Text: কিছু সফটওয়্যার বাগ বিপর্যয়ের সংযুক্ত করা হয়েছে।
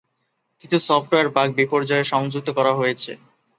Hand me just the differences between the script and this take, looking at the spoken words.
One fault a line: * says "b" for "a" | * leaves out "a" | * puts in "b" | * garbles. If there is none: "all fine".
all fine